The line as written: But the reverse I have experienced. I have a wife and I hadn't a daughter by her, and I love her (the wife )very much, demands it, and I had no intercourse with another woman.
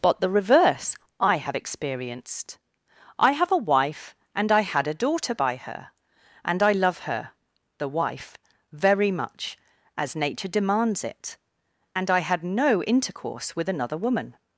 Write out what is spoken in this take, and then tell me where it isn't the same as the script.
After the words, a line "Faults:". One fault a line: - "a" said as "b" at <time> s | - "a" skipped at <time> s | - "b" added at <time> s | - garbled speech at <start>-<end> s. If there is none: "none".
But the reverse I have experienced. I have a wife and I had a daughter by her, and I love her (the wife )very much, as nature demands it, and I had no intercourse with another woman.
Faults:
- "hadn't" said as "had" at 4.6 s
- "as nature" added at 10.0 s